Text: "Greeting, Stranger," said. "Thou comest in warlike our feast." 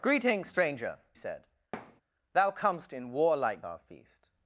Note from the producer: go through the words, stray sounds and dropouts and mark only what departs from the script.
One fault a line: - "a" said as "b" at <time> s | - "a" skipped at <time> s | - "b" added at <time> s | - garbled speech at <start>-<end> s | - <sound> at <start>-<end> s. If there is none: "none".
- thud at 1.7-2.0 s